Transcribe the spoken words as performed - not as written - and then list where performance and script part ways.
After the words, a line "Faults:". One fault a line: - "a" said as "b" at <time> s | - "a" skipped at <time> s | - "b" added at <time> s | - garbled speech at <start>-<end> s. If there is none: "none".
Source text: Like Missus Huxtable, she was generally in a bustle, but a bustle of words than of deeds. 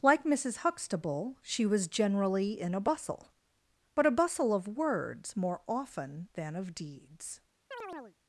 Like Missus Huxtable, she was generally in a bustle, but a bustle of words more often than of deeds.
Faults:
- "more often" added at 5.3 s